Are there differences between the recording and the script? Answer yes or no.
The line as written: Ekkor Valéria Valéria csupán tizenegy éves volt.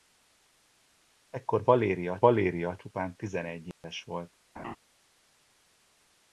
no